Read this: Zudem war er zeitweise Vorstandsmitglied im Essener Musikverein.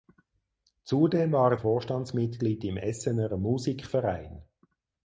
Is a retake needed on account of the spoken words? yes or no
yes